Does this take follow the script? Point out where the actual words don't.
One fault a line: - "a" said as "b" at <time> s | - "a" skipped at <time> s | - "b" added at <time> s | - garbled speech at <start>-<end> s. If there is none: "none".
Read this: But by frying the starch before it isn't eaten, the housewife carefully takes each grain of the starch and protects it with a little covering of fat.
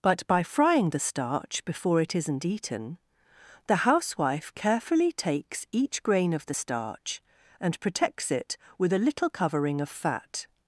none